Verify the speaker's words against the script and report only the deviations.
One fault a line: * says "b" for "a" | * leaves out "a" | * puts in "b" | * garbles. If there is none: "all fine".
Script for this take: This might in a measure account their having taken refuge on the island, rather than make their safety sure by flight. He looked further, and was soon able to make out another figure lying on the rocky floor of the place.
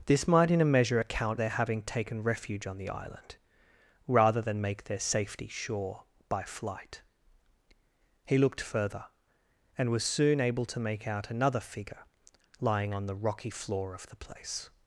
all fine